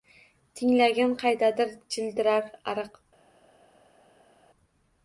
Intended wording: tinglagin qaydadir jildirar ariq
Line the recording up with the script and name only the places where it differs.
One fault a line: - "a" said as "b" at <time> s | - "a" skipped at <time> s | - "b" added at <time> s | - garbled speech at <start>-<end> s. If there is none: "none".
none